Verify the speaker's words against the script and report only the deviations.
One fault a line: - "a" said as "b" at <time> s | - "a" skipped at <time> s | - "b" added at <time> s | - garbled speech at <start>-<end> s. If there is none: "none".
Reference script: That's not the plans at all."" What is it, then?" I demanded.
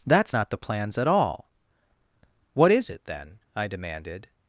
none